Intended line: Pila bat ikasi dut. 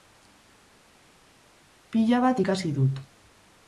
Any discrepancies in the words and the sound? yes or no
no